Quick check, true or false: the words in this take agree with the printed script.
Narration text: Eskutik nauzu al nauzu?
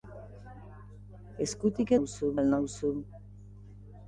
true